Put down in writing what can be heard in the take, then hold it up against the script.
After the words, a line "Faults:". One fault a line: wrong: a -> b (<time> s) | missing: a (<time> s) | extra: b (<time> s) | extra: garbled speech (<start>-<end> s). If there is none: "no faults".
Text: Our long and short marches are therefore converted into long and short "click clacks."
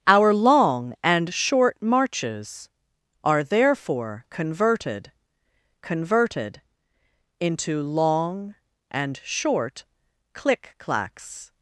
Our long and short marches are therefore converted converted into long and short "click clacks."
Faults:
extra: converted (5.8 s)